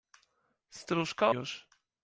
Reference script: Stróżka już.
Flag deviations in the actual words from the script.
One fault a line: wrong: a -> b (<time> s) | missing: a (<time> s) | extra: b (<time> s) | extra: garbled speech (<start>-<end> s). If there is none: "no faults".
no faults